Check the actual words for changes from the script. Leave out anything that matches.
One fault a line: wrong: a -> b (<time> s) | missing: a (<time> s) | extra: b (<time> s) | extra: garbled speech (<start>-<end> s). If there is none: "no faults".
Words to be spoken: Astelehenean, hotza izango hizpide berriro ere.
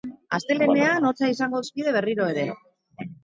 no faults